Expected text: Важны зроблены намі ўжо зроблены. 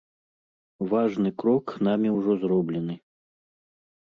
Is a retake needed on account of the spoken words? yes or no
yes